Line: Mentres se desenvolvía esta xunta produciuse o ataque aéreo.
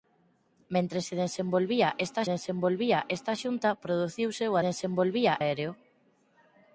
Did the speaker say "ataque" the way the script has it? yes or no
no